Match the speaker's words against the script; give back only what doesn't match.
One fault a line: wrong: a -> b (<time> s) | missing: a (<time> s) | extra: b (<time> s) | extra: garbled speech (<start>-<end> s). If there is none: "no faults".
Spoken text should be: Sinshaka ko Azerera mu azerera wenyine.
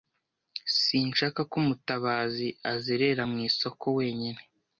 extra: Mutabazi (1.7 s)
wrong: azerera -> isoko (3.5 s)